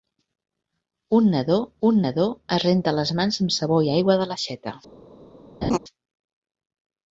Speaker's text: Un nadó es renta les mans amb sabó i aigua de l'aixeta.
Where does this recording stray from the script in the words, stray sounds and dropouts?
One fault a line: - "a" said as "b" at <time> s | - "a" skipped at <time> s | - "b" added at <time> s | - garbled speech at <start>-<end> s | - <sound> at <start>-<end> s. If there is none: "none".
- "un nadó" added at 1.9 s
- laugh at 5.6-5.8 s